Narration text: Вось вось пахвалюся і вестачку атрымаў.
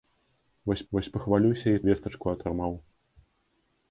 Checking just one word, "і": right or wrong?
right